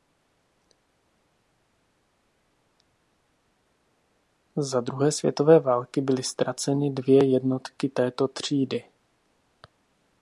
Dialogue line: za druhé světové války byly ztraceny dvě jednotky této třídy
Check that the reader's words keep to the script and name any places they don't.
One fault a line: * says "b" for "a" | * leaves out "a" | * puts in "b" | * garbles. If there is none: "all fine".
all fine